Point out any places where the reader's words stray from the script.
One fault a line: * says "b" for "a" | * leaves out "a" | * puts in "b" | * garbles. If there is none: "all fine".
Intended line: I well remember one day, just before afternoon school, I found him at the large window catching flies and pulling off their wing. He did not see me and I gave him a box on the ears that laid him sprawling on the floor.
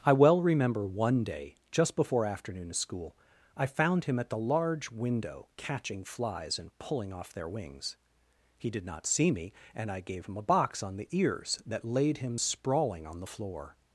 * says "wings" for "wing"